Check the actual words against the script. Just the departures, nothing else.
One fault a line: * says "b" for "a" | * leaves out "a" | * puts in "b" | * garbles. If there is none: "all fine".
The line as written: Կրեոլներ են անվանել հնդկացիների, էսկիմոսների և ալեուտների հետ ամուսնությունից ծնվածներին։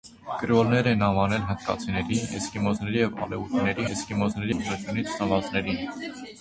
* says "էսկիմոսների" for "հետ"